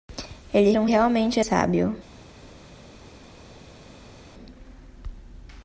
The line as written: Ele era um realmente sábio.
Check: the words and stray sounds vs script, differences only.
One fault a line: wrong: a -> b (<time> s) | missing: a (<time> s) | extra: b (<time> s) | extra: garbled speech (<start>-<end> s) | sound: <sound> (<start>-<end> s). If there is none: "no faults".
no faults